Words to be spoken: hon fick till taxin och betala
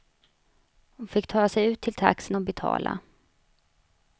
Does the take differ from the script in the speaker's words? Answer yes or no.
yes